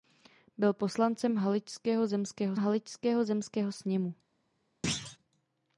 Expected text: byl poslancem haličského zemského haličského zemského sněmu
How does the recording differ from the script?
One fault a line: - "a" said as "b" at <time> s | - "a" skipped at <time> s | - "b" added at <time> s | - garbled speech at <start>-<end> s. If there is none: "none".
none